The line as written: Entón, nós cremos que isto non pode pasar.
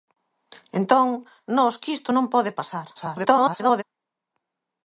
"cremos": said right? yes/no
no